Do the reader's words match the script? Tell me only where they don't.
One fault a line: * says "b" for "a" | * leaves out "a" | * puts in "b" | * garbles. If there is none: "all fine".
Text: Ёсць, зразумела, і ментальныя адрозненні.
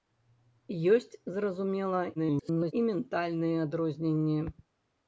* garbles